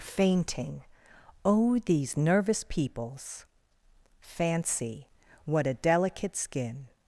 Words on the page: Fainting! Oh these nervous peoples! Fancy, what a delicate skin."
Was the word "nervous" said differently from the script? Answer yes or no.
no